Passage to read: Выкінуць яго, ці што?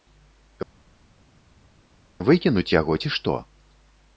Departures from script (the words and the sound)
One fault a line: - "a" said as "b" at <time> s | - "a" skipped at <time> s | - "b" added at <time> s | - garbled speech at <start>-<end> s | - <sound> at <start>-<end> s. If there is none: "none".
none